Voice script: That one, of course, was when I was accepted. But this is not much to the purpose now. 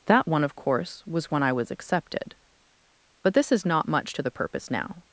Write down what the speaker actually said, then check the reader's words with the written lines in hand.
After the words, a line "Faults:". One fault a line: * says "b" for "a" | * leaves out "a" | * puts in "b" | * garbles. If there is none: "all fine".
That one, of course, was when I was accepted. But this is not much to the purpose now.
Faults:
all fine